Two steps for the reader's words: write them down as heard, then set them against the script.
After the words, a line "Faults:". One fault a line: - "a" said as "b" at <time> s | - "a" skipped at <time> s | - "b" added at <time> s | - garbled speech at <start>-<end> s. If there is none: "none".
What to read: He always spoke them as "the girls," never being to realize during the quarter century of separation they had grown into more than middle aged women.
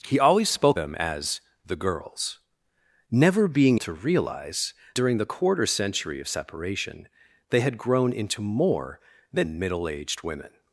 He always spoke them as "the girls," never being to realize during the quarter century of separation they had grown into more than middle aged women.
Faults:
none